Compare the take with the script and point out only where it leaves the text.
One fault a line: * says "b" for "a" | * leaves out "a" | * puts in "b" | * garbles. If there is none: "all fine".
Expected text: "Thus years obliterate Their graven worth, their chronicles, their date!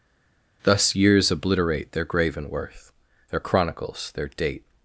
all fine